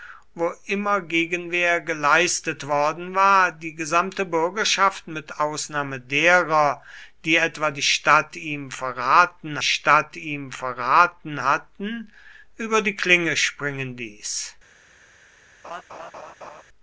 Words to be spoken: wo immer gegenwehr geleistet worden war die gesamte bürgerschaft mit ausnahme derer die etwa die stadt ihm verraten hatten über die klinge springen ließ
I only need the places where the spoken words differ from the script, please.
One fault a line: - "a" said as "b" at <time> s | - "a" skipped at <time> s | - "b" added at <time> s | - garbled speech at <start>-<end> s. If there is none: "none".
- "stadt ihm verraten" added at 9.6 s